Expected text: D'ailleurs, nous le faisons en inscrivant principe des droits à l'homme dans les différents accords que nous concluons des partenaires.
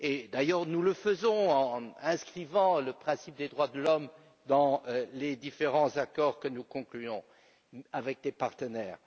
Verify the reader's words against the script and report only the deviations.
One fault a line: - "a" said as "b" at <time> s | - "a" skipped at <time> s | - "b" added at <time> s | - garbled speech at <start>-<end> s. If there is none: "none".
- "le" added at 2.8 s
- "à" said as "de" at 3.7 s
- "avec" added at 7.9 s